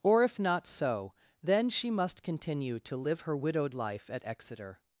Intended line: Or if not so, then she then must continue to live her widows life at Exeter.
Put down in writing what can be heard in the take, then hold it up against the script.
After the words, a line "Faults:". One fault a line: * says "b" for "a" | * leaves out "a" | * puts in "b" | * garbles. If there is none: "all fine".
Or if not so, then she must continue to live her widowed life at Exeter.
Faults:
* leaves out "then"
* says "widowed" for "widows"